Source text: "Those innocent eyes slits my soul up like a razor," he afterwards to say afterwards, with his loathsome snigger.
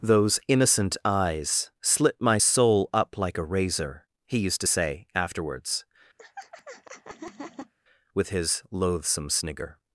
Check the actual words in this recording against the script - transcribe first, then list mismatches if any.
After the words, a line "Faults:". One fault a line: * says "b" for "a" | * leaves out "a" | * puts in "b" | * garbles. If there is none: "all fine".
"Those innocent eyes slit my soul up like a razor," he used to say afterwards, with his loathsome snigger.
Faults:
* says "slit" for "slits"
* says "used" for "afterwards"